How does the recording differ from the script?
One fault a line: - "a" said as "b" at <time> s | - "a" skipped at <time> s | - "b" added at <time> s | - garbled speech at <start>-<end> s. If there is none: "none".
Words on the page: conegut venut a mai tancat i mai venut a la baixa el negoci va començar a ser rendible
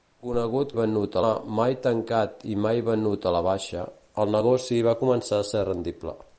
none